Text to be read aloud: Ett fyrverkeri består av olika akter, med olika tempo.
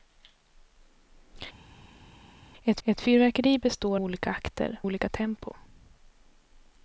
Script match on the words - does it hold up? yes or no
no